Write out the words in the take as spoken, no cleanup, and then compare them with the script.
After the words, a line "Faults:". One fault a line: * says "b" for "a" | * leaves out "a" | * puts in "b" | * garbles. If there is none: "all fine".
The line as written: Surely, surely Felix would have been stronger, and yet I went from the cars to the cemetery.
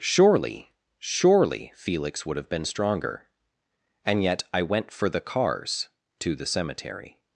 Surely, surely Felix would have been stronger, and yet I went for the cars to the cemetery.
Faults:
* says "for" for "from"